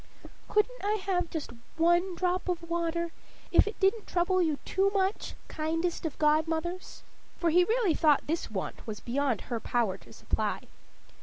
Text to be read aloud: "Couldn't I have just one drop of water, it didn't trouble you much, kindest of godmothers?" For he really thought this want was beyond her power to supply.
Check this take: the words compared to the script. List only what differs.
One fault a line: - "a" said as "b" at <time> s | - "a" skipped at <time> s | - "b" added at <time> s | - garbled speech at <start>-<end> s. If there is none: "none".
- "if" added at 3.5 s
- "too" added at 4.6 s